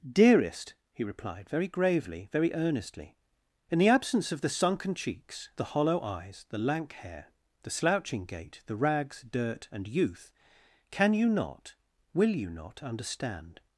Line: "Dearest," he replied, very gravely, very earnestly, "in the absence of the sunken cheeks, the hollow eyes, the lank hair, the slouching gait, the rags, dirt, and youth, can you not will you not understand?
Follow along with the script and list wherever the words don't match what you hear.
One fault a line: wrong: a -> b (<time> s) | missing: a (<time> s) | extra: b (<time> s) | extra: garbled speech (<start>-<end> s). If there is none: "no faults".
no faults